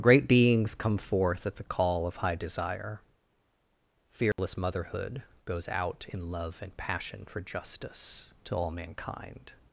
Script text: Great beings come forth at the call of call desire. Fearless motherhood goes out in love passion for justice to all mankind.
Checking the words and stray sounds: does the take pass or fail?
fail